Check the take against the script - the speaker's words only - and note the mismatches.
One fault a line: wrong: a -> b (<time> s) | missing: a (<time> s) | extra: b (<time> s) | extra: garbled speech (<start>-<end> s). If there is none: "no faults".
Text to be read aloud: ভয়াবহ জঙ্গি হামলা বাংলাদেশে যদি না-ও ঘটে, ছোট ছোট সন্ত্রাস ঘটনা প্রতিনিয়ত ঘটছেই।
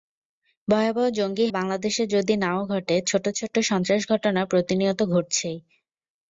missing: হামলা (1.5 s)